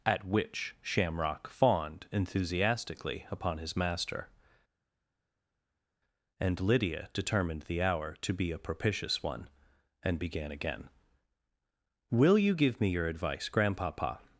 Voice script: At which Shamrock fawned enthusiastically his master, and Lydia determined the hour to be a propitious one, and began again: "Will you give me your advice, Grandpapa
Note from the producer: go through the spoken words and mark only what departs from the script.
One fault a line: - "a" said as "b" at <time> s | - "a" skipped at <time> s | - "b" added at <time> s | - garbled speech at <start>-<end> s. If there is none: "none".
- "upon" added at 3.3 s